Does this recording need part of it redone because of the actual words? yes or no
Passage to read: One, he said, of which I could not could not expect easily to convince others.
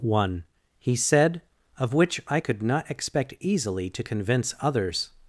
yes